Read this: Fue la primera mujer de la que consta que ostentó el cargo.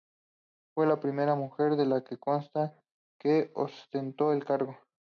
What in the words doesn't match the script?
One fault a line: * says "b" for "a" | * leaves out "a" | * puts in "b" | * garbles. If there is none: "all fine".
all fine